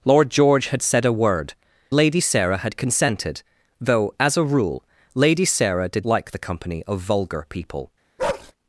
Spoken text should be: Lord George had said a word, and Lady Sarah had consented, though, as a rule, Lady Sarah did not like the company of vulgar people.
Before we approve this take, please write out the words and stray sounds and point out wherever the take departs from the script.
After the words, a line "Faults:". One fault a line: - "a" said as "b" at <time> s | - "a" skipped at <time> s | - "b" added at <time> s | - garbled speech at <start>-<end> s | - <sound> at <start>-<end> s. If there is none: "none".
Lord George had said a word, Lady Sarah had consented, though, as a rule, Lady Sarah did like the company of vulgar people.
Faults:
- "and" skipped at 1.5 s
- "not" skipped at 6.1 s
- bark at 8.2-8.5 s